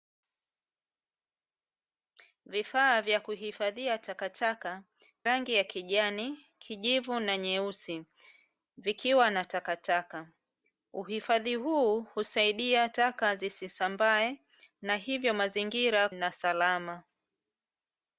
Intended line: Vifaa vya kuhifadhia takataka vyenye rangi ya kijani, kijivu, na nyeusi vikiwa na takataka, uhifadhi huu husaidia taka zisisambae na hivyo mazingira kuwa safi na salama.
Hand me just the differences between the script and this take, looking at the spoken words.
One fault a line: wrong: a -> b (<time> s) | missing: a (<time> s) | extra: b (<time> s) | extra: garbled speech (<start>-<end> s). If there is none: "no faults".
missing: vyenye (4.8 s)
missing: kuwa safi (16.1 s)